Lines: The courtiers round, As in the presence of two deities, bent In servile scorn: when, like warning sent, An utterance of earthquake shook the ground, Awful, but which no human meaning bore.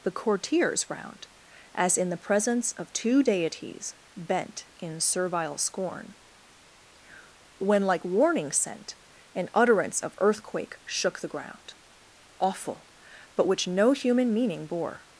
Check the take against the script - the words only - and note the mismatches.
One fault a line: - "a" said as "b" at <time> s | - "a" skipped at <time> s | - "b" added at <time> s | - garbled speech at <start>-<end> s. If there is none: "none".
none